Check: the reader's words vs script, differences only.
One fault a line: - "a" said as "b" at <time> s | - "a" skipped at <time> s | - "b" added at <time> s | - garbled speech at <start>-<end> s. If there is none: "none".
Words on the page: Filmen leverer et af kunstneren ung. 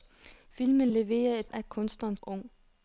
none